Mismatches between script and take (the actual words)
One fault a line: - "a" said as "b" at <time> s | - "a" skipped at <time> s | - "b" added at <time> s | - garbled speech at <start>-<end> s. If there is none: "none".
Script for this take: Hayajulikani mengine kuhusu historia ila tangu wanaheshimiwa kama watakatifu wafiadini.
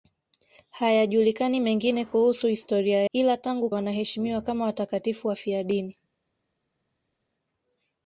none